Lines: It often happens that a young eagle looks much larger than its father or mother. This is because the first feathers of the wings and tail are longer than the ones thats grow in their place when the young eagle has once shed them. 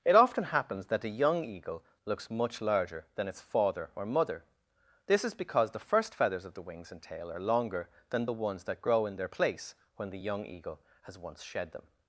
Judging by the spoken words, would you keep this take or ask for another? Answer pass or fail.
fail